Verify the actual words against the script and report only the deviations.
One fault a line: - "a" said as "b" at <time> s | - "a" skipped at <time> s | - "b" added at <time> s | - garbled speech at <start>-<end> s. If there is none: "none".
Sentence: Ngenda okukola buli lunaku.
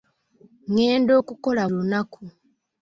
- "buli" skipped at 1.6 s